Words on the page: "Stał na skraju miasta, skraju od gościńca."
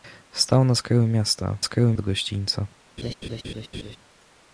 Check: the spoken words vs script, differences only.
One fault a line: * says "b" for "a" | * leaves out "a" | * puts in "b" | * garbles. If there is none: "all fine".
all fine